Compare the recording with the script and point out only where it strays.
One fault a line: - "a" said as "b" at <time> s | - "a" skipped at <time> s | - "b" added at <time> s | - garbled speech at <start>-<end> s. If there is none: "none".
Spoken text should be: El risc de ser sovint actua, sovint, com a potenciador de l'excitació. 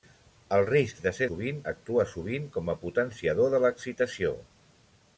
none